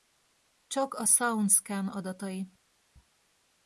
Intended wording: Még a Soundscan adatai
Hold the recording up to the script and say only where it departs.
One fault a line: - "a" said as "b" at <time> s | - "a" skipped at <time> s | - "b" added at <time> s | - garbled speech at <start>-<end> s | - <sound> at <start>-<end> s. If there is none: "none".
- "Még" said as "Csak" at 0.7 s